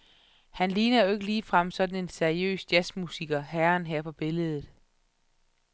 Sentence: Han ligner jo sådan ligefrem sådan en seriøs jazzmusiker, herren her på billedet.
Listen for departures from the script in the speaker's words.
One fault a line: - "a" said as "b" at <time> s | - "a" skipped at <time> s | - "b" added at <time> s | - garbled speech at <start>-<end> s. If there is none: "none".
- "sådan" said as "ikke" at 1.1 s